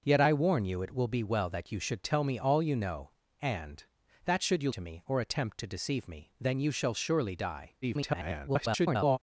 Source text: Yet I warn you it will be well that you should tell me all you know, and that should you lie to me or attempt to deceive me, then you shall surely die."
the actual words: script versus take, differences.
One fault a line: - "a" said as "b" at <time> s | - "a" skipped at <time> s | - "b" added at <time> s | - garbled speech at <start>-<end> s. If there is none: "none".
- "lie" skipped at 4.7 s
- garbled speech at 7.8-9.2 s